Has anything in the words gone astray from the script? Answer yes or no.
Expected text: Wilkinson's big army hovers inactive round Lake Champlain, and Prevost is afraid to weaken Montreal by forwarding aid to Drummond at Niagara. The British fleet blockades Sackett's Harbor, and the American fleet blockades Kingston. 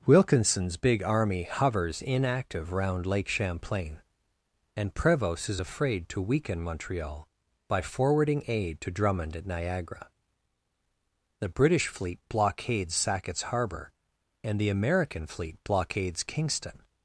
no